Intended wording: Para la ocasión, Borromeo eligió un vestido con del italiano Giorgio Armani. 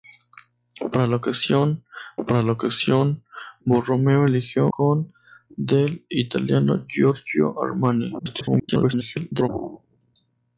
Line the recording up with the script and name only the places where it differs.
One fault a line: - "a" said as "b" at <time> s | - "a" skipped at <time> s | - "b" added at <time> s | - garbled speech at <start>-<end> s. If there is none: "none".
- "para la ocasión" added at 2.3 s
- "un vestido" skipped at 4.7 s
- garbled speech at 8.2-9.5 s